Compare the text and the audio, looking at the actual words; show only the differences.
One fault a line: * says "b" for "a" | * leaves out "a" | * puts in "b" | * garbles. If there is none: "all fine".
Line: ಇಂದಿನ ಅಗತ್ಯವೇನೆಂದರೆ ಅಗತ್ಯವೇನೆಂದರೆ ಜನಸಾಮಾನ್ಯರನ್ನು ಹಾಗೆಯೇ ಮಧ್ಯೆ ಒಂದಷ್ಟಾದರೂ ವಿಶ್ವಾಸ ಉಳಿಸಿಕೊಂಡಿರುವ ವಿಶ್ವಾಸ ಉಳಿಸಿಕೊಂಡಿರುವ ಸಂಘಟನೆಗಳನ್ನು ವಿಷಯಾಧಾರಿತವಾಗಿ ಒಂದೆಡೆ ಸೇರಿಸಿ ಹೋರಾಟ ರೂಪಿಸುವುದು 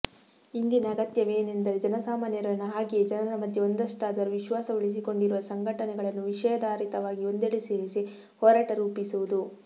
* leaves out "ಅಗತ್ಯವೇನೆಂದರೆ"
* puts in "ಜನರ"
* leaves out "ವಿಶ್ವಾಸ ಉಳಿಸಿಕೊಂಡಿರುವ"